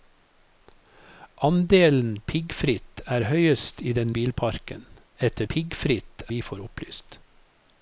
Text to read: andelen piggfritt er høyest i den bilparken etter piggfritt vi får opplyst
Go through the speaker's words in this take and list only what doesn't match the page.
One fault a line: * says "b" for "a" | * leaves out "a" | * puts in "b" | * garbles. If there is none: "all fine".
all fine